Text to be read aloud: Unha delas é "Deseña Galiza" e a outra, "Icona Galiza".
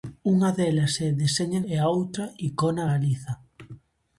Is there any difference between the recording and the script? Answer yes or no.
yes